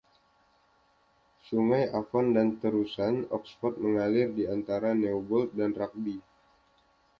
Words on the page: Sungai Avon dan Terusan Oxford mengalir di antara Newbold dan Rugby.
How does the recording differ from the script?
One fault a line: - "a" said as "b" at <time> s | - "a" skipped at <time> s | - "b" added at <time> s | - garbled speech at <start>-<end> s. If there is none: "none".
none